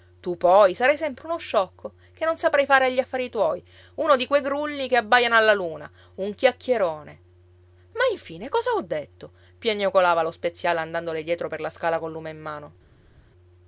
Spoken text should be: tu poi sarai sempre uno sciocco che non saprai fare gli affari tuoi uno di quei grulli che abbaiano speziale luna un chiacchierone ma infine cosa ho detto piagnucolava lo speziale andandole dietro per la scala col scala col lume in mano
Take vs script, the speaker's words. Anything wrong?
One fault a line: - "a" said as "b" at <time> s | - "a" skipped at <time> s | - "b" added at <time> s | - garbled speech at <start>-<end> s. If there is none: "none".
- "speziale" said as "alla" at 5.3 s
- "scala col" skipped at 12.1 s